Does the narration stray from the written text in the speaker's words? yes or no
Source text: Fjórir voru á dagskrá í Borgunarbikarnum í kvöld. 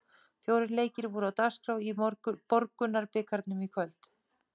yes